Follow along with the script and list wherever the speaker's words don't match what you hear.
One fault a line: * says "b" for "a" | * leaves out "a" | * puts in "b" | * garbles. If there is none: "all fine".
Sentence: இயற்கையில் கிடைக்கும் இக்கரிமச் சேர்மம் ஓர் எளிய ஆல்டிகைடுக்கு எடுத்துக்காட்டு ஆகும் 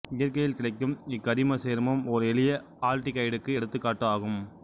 all fine